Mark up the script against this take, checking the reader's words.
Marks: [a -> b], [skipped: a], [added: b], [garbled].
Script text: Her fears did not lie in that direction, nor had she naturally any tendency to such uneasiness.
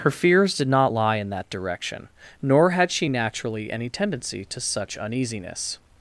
Her fears did not lie in that direction, nor had she naturally any tendency to such uneasiness.